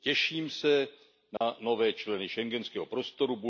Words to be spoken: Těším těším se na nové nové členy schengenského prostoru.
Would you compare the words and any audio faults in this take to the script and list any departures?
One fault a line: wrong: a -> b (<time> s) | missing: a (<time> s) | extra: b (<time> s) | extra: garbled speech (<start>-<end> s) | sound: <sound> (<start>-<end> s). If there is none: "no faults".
missing: těším (0.5 s)
sound: dropout (1.4-1.4 s)
missing: nové (1.9 s)